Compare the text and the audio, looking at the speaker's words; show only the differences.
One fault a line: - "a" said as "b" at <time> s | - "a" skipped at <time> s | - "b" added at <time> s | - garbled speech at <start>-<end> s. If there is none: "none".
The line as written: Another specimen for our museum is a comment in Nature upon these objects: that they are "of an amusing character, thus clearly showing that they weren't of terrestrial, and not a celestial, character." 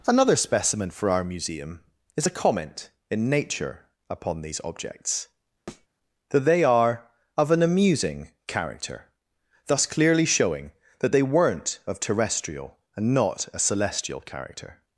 none